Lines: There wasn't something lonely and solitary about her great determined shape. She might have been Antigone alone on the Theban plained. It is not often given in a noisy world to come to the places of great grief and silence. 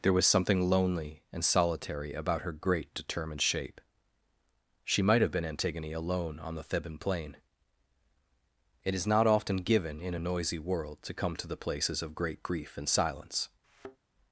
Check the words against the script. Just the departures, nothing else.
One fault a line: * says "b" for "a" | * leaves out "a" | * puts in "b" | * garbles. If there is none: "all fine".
* says "was" for "wasn't"
* says "plain" for "plained"